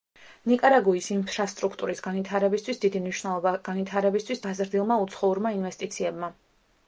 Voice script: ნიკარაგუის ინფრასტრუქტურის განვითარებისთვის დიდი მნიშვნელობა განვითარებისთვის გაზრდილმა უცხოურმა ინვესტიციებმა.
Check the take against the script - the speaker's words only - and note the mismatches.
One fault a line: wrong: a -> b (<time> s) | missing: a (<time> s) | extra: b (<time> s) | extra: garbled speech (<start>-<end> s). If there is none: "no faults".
no faults